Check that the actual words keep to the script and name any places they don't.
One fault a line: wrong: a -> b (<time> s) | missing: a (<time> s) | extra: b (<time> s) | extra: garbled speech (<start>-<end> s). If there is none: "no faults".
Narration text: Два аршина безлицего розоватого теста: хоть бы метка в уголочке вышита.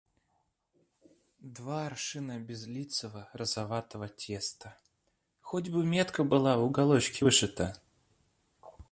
extra: была (6.2 s)